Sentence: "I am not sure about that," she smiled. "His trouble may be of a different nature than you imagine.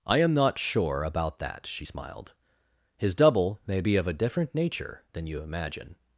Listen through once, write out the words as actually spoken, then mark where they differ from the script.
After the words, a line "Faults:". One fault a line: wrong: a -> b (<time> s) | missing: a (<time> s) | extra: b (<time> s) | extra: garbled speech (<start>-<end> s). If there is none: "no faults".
"I am not sure about that," she smiled. "His double may be of a different nature than you imagine.
Faults:
wrong: trouble -> double (3.1 s)